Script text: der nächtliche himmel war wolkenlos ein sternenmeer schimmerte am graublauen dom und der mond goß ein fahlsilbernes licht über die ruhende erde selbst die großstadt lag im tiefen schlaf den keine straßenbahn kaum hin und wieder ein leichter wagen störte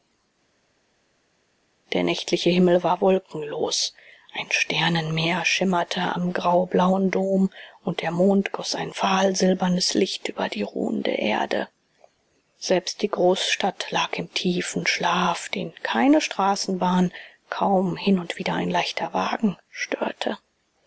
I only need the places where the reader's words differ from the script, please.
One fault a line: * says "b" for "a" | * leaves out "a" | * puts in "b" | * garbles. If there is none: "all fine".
all fine